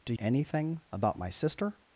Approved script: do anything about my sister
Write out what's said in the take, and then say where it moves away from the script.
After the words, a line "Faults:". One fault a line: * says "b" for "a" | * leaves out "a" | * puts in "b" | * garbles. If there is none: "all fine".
do anything about my sister
Faults:
all fine